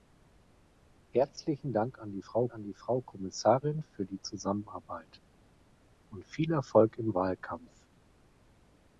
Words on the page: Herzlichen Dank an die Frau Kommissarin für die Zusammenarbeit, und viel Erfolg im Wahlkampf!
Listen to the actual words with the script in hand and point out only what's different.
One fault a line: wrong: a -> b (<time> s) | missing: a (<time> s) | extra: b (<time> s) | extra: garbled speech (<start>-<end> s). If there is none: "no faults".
extra: an die Frau (2.5 s)